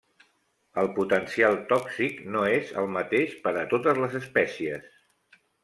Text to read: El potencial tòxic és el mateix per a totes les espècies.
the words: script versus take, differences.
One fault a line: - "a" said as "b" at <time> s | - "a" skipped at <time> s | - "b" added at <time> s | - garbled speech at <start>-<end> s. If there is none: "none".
- "no" added at 2.4 s